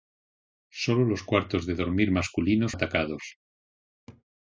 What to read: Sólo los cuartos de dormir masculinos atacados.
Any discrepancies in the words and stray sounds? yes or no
yes